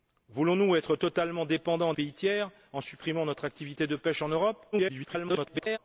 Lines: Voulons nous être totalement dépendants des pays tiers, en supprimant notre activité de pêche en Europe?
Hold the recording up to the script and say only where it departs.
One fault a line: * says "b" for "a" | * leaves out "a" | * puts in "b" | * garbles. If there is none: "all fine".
* leaves out "des"
* garbles